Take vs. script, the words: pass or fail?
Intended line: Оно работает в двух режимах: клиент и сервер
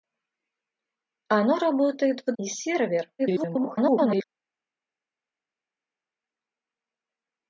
fail